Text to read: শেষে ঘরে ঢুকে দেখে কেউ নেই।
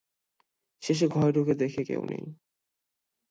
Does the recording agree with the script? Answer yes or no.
yes